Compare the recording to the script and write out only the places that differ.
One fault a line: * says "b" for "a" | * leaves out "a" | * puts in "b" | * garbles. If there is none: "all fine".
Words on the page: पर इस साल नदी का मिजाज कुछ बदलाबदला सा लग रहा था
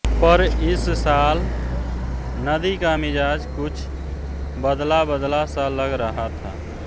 all fine